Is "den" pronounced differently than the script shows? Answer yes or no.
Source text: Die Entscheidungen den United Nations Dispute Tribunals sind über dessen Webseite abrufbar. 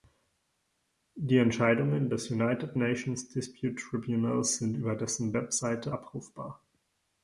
yes